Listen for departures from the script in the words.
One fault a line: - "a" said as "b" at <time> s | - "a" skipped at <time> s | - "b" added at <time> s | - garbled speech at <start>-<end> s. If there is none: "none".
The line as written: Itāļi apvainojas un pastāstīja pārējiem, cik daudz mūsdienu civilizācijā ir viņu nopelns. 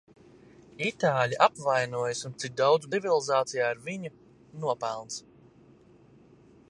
- "pastāstīja pārējiem" skipped at 2.3 s
- "mūsdienu" skipped at 2.9 s